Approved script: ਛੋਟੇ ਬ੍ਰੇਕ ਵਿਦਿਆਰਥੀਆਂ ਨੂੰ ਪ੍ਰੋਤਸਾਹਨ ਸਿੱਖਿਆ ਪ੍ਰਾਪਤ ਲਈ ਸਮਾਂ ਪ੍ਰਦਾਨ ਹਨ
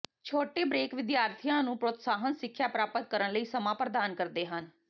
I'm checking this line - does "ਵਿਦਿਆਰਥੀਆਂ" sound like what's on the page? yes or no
yes